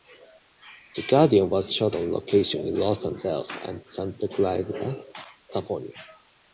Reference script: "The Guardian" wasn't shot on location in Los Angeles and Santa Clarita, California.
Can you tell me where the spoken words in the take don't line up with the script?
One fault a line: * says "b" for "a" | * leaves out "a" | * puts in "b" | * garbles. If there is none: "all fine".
* says "was" for "wasn't"